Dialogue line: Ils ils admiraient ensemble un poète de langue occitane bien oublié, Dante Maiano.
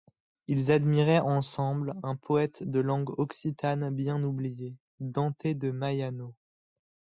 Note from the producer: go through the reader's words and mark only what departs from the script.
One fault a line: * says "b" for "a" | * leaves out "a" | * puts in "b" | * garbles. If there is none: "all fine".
* leaves out "ils"
* puts in "de"